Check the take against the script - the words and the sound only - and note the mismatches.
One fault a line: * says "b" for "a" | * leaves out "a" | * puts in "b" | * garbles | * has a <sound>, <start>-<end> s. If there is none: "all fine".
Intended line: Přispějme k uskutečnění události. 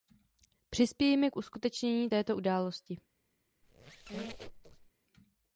* puts in "této"
* has a squeak, 3.6-4.9 s